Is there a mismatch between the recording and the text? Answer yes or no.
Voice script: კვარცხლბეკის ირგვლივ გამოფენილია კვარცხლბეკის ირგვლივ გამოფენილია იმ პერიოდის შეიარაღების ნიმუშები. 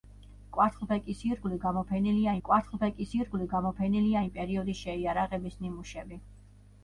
no